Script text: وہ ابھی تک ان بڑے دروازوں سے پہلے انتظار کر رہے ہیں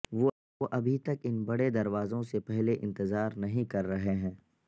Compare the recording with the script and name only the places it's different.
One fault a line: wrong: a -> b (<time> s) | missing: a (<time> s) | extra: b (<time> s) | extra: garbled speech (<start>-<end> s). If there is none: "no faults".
extra: نہیں (3.4 s)